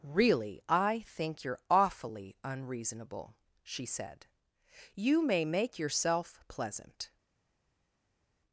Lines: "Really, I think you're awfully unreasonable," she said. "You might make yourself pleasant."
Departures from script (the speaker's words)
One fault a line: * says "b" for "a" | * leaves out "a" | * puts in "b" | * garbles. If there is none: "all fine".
* says "may" for "might"